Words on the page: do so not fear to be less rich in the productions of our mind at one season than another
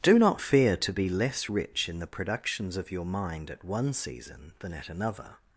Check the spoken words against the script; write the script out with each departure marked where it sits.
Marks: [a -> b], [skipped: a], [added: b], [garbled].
do [skipped: so] not fear to be less rich in the productions of [our -> your] mind at one season than [added: at] another